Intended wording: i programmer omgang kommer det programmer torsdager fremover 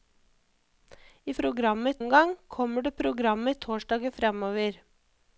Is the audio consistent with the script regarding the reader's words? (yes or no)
yes